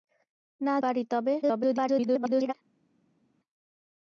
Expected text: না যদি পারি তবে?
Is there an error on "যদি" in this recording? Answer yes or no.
yes